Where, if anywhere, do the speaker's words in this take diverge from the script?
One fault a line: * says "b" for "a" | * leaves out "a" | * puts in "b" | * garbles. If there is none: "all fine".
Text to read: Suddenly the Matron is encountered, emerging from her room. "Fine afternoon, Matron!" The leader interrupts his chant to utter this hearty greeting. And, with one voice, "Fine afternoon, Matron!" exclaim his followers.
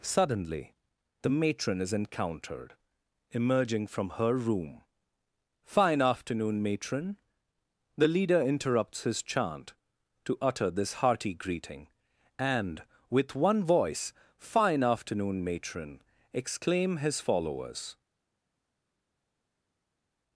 all fine